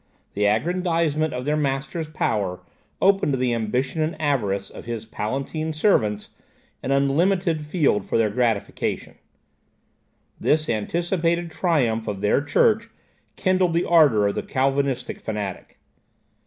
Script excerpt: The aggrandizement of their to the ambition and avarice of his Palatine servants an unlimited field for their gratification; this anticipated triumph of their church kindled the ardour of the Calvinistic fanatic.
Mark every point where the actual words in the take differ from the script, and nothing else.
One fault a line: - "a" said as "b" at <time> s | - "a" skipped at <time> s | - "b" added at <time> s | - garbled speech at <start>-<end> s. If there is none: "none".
- "master's power opened" added at 1.6 s